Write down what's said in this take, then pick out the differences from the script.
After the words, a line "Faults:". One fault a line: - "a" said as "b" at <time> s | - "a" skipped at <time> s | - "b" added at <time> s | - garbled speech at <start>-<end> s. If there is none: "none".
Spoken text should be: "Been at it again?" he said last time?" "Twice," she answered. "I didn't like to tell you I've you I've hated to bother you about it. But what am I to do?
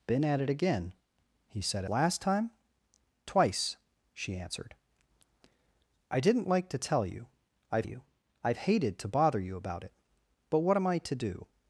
"Been at it again?" he said last time?" "Twice," she answered. "I didn't like to tell you I've you I've hated to bother you about it. But what am I to do?
Faults:
none